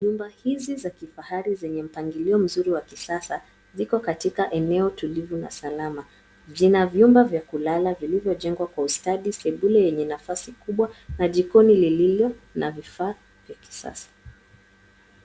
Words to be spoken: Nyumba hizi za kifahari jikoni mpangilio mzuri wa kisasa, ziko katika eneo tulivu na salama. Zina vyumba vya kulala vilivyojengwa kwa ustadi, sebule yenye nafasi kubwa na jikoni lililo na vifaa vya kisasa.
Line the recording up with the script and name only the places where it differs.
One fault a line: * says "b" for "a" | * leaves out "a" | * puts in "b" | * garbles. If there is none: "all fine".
* says "zenye" for "jikoni"